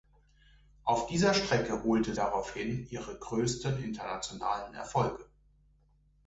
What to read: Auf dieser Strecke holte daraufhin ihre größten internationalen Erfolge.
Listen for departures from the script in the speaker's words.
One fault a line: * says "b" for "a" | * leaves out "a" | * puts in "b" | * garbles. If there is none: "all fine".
all fine